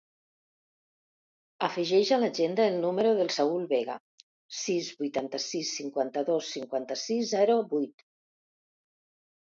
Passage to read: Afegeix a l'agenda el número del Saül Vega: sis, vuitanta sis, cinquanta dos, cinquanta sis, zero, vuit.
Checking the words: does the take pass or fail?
pass